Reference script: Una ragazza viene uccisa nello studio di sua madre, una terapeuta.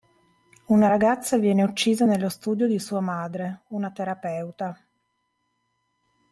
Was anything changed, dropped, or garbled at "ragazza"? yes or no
no